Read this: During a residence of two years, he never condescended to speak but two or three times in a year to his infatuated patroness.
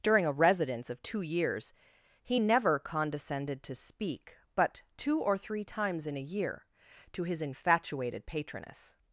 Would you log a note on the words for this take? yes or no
no